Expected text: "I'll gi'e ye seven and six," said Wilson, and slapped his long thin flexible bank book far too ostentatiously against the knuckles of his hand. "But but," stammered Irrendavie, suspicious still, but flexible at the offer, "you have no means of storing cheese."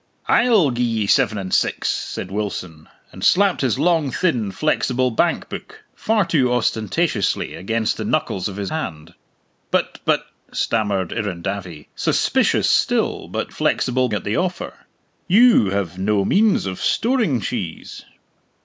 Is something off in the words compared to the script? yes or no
no